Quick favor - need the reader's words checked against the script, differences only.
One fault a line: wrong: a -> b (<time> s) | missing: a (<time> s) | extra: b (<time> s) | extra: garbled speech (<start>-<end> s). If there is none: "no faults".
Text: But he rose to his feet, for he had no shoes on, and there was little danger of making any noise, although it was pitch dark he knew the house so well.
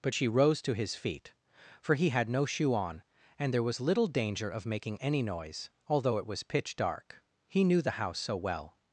wrong: he -> she (0.1 s)
wrong: shoes -> shoe (2.4 s)